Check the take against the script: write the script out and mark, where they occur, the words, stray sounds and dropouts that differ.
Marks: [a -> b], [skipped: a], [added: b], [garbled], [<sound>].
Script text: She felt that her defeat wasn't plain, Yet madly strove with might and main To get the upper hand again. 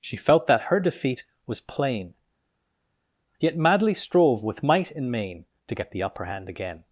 She felt that her defeat [wasn't -> was] plain, Yet madly strove with might and main To get the upper hand again.